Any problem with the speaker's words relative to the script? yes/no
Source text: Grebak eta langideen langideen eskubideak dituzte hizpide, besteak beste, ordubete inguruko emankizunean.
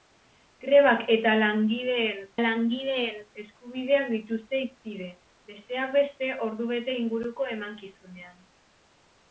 no